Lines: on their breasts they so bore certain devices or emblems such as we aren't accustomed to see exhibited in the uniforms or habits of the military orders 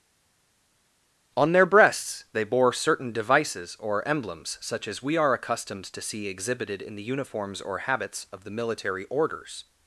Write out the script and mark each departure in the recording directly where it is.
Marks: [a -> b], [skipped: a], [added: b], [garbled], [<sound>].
on their breasts they [skipped: so] bore certain devices or emblems such as we [aren't -> are] accustomed to see exhibited in the uniforms or habits of the military orders